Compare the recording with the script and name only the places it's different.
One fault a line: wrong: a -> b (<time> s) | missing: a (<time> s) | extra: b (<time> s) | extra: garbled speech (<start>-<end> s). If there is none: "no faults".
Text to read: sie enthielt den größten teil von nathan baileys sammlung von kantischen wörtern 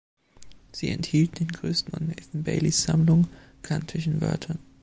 missing: teil (1.9 s)
missing: von (3.3 s)